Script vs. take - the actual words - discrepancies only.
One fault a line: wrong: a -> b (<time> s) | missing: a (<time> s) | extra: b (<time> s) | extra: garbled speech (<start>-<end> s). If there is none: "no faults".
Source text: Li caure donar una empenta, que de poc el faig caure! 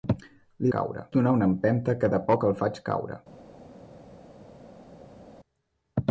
no faults